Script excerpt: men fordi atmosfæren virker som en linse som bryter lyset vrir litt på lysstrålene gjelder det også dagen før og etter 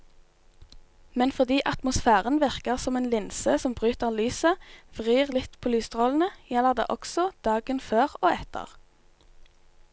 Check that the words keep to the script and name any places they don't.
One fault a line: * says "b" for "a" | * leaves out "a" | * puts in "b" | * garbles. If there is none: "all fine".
all fine